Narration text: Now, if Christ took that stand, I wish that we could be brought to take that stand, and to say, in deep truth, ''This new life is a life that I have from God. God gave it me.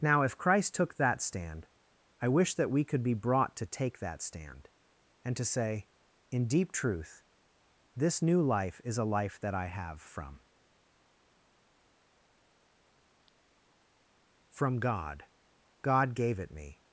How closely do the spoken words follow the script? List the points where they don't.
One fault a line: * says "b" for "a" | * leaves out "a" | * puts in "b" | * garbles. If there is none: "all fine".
* puts in "from"